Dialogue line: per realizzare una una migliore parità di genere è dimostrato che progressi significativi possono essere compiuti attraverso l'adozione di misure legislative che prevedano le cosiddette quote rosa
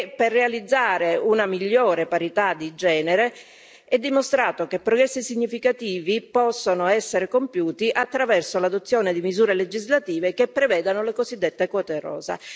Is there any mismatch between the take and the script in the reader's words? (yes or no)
yes